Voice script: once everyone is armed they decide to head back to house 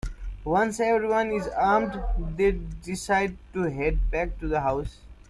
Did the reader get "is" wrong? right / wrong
right